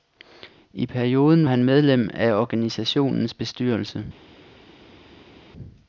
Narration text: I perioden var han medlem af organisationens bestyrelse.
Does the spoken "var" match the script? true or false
false